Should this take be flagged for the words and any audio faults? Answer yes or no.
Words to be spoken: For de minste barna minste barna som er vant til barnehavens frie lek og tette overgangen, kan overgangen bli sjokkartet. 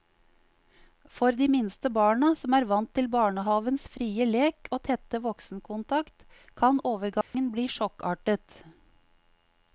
yes